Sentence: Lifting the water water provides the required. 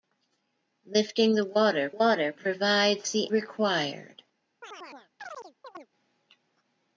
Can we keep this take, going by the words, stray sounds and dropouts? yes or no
no